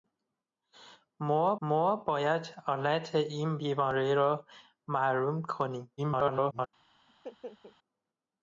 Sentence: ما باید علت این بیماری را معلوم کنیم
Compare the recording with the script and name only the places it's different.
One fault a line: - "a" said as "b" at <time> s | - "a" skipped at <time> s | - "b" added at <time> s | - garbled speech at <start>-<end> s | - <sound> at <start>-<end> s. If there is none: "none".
- "ما" added at 1.6 s
- garbled speech at 6.0-6.7 s
- laugh at 7.1-7.8 s